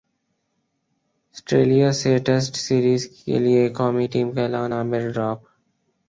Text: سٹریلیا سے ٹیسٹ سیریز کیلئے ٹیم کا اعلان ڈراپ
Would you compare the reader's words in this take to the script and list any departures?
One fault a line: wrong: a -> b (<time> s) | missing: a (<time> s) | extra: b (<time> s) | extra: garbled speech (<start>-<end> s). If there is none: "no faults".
extra: قومی (3.8 s)
extra: عامر (4.7 s)